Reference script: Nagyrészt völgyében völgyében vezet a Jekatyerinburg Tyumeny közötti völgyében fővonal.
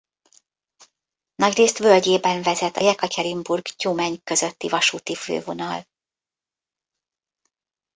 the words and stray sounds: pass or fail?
fail